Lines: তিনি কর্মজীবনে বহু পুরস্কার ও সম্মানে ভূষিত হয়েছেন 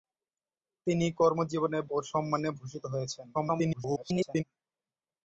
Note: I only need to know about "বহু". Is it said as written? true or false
false